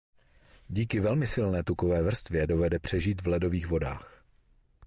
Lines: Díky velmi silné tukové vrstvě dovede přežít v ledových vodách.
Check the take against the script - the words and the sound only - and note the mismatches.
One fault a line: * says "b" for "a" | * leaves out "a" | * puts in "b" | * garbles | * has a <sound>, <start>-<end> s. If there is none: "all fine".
all fine